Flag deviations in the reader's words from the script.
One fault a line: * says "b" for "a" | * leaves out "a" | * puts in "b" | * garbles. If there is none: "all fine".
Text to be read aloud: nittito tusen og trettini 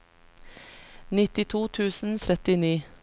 all fine